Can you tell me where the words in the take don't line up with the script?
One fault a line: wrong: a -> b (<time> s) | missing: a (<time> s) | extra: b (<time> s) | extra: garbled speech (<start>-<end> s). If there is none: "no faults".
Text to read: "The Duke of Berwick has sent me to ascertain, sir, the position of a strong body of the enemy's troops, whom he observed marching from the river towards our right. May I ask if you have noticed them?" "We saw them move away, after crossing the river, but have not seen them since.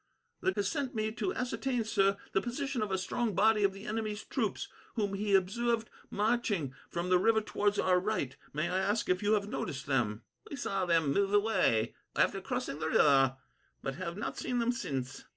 missing: Duke of Berwick (0.5 s)